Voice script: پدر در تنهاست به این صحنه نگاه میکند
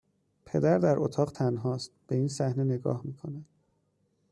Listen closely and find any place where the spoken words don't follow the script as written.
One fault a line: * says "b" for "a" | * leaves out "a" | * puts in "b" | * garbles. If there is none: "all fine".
* puts in "اتاق"